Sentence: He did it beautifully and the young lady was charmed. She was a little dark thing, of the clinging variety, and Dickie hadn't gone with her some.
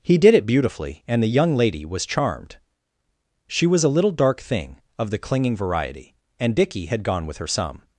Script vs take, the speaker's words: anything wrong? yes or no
yes